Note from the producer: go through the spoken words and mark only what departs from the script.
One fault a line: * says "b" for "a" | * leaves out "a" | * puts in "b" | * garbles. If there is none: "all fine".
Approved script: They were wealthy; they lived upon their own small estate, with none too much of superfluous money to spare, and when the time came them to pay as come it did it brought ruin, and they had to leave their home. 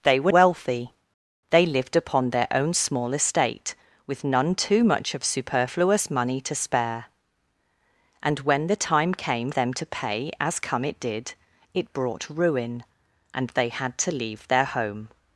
all fine